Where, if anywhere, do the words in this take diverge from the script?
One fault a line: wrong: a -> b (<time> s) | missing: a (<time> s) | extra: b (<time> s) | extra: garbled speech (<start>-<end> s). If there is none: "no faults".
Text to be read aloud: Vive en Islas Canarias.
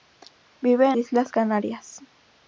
no faults